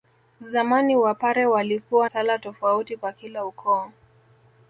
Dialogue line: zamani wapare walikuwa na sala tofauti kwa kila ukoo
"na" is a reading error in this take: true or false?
true